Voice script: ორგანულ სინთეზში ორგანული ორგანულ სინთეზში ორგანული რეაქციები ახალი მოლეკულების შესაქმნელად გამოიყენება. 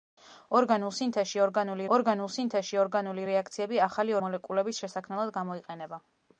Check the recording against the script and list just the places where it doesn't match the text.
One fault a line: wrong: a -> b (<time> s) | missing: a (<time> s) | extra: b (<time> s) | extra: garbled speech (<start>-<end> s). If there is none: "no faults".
no faults